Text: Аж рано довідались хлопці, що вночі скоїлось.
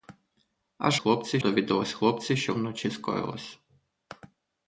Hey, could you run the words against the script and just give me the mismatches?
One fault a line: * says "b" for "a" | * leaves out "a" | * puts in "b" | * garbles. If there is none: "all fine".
* says "хлопці" for "рано"